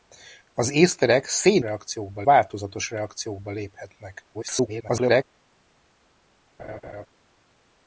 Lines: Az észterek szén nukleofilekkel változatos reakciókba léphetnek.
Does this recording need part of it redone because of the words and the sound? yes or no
yes